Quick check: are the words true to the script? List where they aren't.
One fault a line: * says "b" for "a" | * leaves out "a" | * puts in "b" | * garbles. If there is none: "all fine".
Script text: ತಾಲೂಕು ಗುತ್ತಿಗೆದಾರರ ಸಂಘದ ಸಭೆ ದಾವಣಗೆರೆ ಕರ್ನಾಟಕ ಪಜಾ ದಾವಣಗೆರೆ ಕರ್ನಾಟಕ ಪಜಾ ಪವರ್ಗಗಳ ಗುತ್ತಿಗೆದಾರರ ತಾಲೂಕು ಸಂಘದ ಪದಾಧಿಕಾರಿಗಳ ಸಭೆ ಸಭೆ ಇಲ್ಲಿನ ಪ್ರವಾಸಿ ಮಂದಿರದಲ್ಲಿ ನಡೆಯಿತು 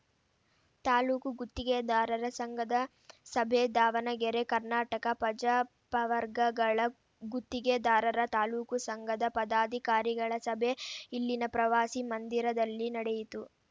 * leaves out "ದಾವಣಗೆರೆ ಕರ್ನಾಟಕ ಪಜಾ"
* leaves out "ಸಭೆ"